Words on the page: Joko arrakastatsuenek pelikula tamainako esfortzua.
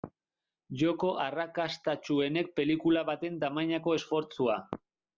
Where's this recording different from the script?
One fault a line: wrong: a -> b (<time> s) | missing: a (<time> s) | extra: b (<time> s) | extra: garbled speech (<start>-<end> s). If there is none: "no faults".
extra: baten (3.1 s)